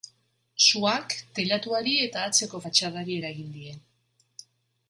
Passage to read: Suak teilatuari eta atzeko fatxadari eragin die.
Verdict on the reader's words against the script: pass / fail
pass